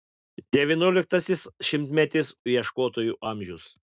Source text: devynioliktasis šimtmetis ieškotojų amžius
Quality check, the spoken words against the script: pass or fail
pass